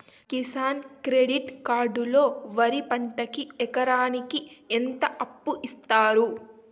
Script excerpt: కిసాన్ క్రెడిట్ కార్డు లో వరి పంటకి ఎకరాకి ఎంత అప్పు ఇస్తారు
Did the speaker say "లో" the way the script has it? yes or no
yes